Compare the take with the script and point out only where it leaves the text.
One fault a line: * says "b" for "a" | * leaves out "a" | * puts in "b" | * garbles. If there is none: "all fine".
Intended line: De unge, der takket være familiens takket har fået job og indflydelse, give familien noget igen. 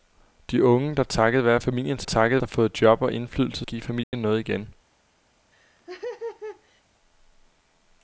all fine